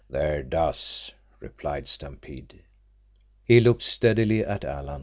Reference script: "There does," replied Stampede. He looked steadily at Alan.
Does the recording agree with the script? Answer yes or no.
yes